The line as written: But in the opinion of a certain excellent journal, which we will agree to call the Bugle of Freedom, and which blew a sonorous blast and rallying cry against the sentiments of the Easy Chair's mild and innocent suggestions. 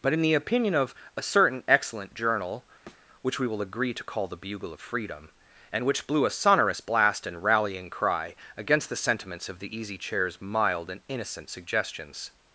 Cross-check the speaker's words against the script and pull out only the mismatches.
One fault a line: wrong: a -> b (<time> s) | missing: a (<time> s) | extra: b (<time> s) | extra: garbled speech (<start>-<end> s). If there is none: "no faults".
no faults